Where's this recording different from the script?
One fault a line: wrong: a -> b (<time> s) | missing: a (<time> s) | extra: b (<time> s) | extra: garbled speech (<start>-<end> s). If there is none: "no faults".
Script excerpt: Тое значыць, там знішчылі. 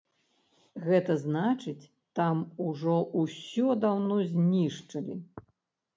wrong: Тое -> Гэта (0.8 s)
extra: ужо ўсё даўно (2.7 s)